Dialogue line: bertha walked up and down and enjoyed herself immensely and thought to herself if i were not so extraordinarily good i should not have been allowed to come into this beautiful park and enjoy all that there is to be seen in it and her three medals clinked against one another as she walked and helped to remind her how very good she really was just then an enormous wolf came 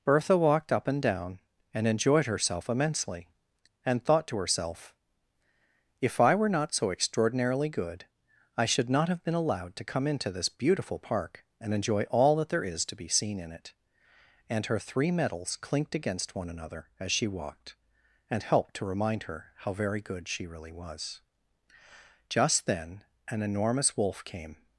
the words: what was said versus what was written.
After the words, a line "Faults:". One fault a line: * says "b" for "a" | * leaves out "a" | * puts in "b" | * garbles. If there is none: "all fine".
bertha walked up and down and enjoyed herself immensely and thought to herself if i were not so extraordinarily good i should not have been allowed to come into this beautiful park and enjoy all that there is to be seen in it and her three medals clinked against one another as she walked and helped to remind her how very good she really was just then an enormous wolf came
Faults:
all fine